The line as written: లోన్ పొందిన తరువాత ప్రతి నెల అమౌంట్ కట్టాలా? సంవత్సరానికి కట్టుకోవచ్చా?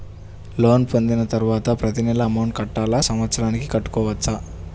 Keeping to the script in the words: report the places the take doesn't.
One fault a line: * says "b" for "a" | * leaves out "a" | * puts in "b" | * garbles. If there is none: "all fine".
all fine